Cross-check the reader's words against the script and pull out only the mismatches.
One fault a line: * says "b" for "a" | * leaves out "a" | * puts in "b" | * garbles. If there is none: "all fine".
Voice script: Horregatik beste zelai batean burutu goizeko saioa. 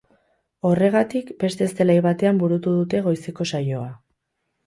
* puts in "dute"